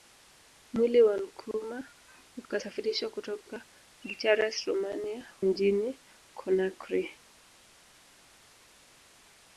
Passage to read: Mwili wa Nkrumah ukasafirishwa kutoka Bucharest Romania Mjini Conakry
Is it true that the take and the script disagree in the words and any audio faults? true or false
false